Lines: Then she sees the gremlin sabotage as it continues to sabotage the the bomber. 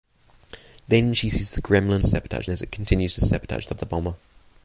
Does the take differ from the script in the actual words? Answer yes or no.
no